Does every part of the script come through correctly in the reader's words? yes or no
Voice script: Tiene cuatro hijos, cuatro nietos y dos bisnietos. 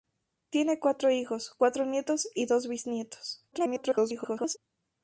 no